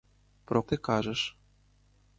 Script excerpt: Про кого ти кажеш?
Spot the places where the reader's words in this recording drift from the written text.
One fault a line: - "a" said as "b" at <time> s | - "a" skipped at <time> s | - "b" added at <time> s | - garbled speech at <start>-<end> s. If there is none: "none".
- "кого" skipped at 0.6 s